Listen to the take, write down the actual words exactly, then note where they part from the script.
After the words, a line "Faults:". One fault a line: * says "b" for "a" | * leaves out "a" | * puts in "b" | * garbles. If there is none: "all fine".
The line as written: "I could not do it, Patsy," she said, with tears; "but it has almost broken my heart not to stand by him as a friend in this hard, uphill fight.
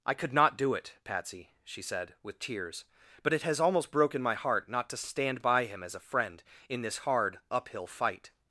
"I could not do it, Patsy," she said, with tears; "but it has almost broken my heart not to stand by him as a friend in this hard, uphill fight.
Faults:
all fine